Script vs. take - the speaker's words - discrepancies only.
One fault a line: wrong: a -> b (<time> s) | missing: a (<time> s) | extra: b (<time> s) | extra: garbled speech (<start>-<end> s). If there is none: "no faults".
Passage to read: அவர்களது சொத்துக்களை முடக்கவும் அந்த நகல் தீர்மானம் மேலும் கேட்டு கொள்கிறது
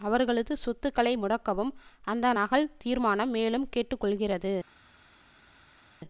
no faults